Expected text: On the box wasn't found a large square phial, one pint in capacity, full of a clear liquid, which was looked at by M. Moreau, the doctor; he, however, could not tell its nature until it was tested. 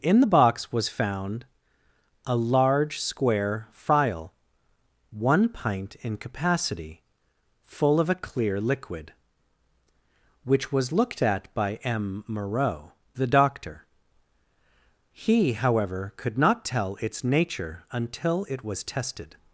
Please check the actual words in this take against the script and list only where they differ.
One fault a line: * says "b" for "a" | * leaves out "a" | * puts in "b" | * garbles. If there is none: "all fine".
* says "In" for "On"
* says "was" for "wasn't"